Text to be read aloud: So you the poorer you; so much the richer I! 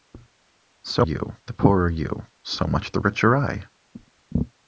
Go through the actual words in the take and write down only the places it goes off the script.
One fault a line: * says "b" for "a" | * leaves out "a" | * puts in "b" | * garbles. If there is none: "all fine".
all fine